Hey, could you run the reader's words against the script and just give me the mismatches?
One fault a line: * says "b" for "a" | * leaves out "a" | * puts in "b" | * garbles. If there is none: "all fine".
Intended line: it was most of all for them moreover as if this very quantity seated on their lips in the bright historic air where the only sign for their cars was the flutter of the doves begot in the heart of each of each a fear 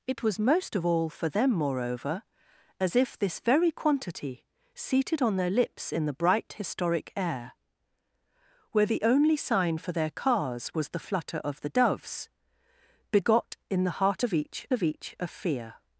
all fine